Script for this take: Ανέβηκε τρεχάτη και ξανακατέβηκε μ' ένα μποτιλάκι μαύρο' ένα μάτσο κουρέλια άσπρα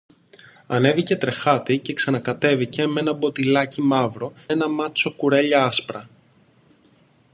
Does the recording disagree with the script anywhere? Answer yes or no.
no